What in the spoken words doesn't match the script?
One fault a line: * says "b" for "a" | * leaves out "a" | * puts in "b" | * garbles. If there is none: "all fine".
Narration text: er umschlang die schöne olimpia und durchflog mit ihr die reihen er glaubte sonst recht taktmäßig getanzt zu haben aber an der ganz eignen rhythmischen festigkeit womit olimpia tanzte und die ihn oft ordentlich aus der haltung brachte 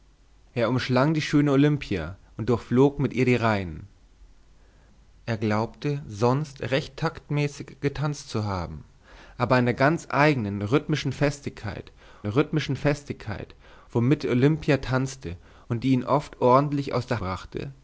* puts in "rhythmischen festigkeit"
* leaves out "haltung"